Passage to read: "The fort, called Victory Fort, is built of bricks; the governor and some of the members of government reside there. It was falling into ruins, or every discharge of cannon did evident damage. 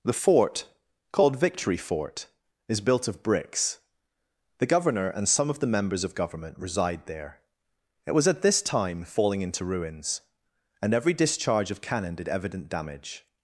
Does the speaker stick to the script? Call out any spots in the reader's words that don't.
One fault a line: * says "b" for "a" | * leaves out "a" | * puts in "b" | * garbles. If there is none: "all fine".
* puts in "at this time"
* says "and" for "or"